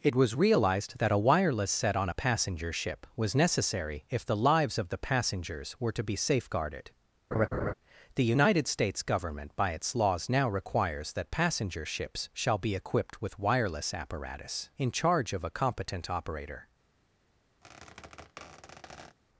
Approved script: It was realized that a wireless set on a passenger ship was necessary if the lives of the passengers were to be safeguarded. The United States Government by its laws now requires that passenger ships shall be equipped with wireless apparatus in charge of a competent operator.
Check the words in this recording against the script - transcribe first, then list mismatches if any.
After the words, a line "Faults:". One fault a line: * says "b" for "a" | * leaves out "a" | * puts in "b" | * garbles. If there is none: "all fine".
It was realized that a wireless set on a passenger ship was necessary if the lives of the passengers were to be safeguarded. The United States Government by its laws now requires that passenger ships shall be equipped with wireless apparatus in charge of a competent operator.
Faults:
all fine